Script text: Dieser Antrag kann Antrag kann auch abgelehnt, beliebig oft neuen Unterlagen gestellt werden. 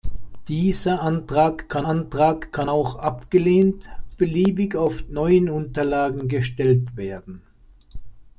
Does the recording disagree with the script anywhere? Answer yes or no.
no